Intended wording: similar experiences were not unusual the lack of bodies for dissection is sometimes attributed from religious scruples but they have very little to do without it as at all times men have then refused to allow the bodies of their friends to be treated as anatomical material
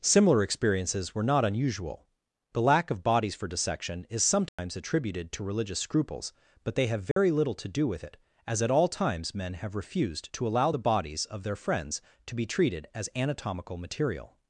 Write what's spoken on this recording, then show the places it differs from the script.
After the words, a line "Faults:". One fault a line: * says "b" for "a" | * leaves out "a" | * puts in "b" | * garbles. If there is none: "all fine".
similar experiences were not unusual the lack of bodies for dissection is sometimes attributed to religious scruples but they have very little to do with it as at all times men have refused to allow the bodies of their friends to be treated as anatomical material
Faults:
* says "to" for "from"
* says "with" for "without"
* leaves out "then"